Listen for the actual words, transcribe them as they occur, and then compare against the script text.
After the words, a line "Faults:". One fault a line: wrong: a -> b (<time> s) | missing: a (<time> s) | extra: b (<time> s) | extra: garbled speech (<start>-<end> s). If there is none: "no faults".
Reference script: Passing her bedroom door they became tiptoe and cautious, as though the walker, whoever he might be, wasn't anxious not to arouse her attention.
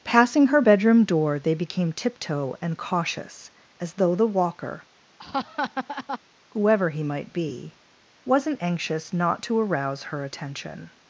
Passing her bedroom door they became tiptoe and cautious, as though the walker, whoever he might be, wasn't anxious not to arouse her attention.
Faults:
no faults